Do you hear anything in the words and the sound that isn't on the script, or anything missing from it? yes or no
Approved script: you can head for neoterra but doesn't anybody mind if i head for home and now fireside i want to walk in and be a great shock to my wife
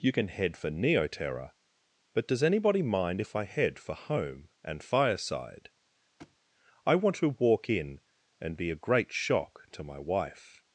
yes